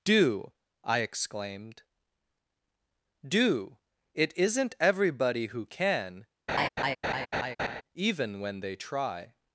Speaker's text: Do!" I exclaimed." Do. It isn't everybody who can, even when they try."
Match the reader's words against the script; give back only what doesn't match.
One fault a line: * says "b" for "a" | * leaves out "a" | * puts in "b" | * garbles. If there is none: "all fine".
all fine